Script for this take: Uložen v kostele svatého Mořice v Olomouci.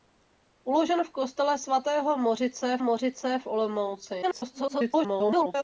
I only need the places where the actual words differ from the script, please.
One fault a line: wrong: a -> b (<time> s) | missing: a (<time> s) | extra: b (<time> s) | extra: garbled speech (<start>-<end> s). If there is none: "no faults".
extra: Mořice (2.8 s)
extra: garbled speech (4.2-5.6 s)